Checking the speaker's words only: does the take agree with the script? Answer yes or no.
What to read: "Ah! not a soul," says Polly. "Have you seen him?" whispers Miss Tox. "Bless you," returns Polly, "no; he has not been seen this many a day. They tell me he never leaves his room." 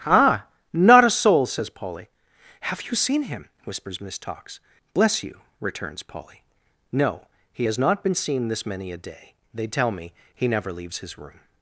yes